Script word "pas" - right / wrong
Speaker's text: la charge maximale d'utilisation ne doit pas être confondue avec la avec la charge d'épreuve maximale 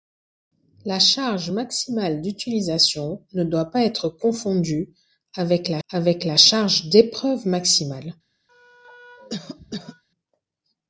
right